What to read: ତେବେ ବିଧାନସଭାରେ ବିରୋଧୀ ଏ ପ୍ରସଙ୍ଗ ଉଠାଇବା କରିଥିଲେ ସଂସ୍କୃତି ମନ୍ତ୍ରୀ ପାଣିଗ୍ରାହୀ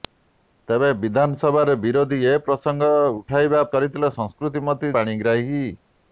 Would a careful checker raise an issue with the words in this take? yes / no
no